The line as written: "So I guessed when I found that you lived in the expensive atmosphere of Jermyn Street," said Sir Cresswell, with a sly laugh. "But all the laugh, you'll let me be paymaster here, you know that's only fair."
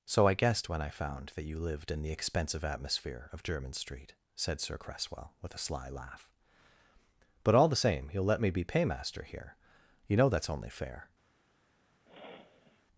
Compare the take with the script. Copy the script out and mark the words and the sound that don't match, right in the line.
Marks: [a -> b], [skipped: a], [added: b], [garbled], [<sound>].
"So I guessed when I found that you lived in the expensive atmosphere of Jermyn Street," said Sir Cresswell, with a sly laugh. "But all the [laugh, -> same] you'll let me be paymaster here, you know that's only fair." [sniff]